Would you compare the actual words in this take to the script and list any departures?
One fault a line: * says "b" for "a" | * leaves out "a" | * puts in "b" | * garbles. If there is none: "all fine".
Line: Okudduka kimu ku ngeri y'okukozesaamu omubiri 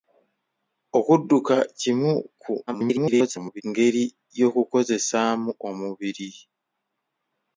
* garbles